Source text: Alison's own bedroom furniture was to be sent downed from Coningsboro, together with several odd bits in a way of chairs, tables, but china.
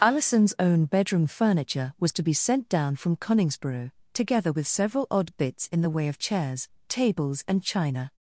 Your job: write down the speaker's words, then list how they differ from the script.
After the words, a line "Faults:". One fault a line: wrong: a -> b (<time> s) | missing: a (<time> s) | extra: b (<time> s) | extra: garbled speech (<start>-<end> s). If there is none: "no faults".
Alison's own bedroom furniture was to be sent down from Coningsboro, together with several odd bits in the way of chairs, tables, and china.
Faults:
wrong: downed -> down (2.7 s)
wrong: a -> the (5.8 s)
wrong: but -> and (7.5 s)